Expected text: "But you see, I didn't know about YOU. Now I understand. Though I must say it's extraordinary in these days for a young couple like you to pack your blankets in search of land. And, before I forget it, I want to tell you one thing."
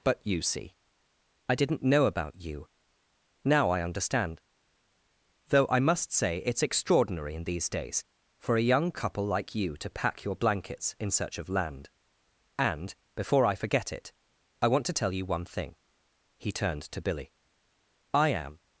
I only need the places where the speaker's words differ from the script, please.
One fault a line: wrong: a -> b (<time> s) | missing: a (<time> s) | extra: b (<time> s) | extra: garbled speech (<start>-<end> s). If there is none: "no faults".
extra: He turned to Billy I am (16.4 s)